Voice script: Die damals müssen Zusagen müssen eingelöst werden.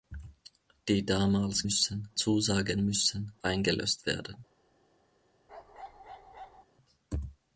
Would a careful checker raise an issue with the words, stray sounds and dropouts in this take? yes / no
yes